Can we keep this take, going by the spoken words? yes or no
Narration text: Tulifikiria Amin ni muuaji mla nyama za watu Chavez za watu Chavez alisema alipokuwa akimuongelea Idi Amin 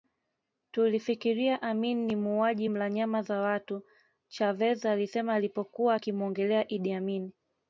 no